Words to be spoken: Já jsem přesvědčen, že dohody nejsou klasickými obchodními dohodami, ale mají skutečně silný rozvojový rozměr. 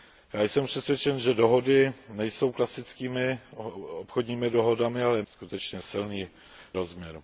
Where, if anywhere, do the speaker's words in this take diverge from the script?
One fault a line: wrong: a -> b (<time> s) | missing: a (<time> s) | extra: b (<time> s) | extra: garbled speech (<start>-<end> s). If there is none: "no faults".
missing: mají (5.2 s)
missing: rozvojový (6.3 s)